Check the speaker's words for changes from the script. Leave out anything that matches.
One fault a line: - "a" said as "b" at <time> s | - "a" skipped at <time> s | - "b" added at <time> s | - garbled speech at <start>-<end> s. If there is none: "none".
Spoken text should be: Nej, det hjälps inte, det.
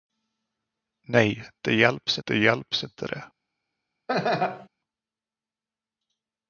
- "det hjälps" added at 2.2 s